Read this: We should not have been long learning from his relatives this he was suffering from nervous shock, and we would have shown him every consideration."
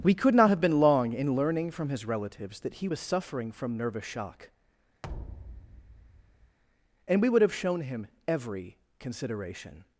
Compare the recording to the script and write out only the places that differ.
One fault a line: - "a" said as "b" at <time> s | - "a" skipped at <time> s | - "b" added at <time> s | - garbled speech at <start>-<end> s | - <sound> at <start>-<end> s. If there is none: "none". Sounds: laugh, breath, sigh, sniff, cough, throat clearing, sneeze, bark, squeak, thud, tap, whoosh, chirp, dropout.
- "should" said as "could" at 0.1 s
- "in" added at 1.1 s
- "this" said as "that" at 2.6 s
- thud at 5.0-6.6 s